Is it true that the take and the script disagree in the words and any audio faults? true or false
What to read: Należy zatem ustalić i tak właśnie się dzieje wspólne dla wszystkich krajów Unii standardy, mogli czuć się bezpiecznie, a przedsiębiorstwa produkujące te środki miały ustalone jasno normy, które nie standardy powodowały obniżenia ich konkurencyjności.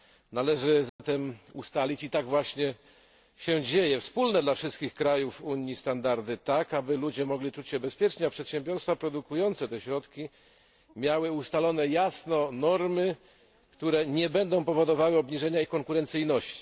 true